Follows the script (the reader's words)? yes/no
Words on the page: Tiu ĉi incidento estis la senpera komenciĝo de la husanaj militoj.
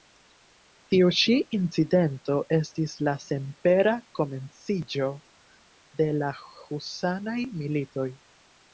yes